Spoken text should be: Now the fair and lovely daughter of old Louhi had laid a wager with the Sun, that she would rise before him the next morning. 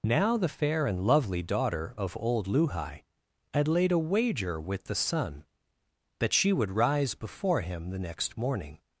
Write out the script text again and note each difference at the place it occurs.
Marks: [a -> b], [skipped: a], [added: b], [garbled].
Now the fair and lovely daughter of old Louhi had laid a wager with the Sun, that she would rise before him the next morning.